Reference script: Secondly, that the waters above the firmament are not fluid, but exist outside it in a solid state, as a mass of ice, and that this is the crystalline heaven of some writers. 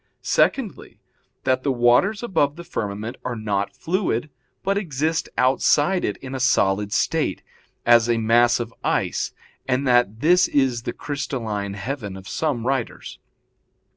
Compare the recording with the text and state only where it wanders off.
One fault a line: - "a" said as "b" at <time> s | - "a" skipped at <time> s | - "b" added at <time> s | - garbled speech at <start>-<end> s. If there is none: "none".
none